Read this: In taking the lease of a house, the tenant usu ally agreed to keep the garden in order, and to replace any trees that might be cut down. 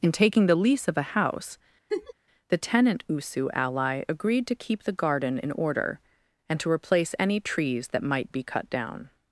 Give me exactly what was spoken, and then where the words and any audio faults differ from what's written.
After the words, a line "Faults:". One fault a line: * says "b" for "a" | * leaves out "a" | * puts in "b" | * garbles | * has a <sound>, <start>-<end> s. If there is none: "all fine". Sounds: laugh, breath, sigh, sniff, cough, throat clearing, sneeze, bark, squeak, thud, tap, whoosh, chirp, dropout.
In taking the lease of a house, the tenant usu ally agreed to keep the garden in order, and to replace any trees that might be cut down.
Faults:
* has a laugh, 1.9-2.1 s